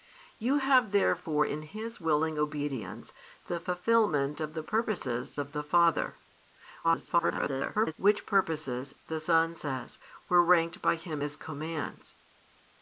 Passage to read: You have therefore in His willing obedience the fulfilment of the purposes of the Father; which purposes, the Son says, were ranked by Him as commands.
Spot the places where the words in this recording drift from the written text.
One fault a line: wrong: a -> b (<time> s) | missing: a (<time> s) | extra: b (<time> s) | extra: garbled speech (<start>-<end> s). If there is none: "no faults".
extra: garbled speech (6.8-7.9 s)